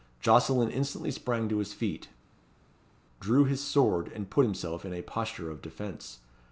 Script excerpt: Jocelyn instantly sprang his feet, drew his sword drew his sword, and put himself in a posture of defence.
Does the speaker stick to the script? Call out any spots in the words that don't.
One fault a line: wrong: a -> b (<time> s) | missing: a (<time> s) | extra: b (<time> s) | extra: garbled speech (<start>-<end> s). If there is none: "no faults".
extra: to (1.5 s)
missing: drew his sword (4.1 s)